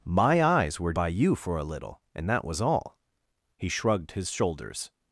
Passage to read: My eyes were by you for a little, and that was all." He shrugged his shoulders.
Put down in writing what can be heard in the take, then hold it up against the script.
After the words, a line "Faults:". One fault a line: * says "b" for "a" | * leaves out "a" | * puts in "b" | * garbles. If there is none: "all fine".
My eyes were by you for a little, and that was all." He shrugged his shoulders.
Faults:
all fine